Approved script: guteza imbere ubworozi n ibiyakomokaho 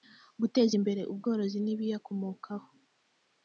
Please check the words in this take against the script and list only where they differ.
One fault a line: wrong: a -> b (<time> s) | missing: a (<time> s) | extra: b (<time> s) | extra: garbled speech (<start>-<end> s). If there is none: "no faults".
no faults